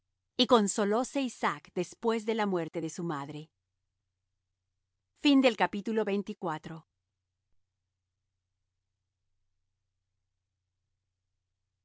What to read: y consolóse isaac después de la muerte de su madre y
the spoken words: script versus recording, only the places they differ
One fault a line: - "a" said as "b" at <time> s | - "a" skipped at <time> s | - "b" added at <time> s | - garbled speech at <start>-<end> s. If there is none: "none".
none